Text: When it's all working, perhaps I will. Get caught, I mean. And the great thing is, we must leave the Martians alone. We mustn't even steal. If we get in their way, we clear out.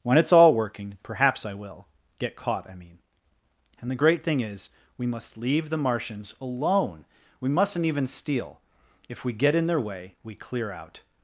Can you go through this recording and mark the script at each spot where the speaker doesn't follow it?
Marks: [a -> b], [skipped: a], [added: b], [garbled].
When it's all working, perhaps I will. Get caught, I mean. And the great thing is, we must leave the Martians alone. We mustn't even steal. If we get in their way, we clear out.